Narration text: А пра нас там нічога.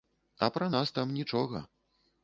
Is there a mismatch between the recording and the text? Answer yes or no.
no